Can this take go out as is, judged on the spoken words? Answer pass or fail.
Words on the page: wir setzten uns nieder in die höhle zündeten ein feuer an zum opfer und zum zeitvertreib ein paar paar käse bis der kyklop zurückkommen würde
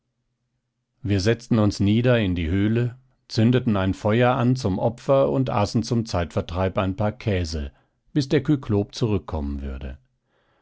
fail